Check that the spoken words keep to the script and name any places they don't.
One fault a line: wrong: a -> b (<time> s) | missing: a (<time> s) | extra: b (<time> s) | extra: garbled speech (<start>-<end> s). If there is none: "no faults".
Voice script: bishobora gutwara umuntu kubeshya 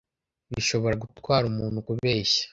no faults